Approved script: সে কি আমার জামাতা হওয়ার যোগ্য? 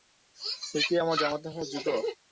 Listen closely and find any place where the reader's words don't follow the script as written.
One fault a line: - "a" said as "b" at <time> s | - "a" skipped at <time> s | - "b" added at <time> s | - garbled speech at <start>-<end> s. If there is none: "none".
none